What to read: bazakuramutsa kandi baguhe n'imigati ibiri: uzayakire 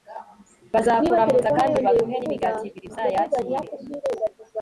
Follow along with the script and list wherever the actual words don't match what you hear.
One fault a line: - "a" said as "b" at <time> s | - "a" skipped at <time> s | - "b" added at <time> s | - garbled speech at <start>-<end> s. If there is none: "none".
none